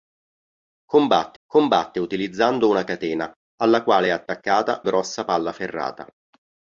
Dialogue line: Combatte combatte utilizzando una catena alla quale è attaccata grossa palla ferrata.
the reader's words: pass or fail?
pass